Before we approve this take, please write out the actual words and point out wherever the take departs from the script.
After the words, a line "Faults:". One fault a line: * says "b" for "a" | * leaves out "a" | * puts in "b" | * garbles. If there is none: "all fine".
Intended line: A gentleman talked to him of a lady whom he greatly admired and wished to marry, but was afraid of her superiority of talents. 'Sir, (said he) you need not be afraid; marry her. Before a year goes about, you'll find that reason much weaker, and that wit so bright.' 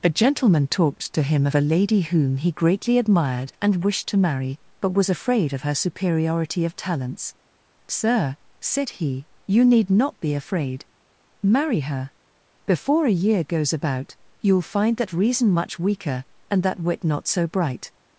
A gentleman talked to him of a lady whom he greatly admired and wished to marry, but was afraid of her superiority of talents. 'Sir, (said he) you need not be afraid; marry her. Before a year goes about, you'll find that reason much weaker, and that wit not so bright.'
Faults:
* puts in "not"